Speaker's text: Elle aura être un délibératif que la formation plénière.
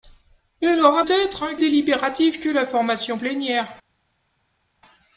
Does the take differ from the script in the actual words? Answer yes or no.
no